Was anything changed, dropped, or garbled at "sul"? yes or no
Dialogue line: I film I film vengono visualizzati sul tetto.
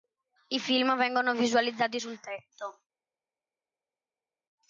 no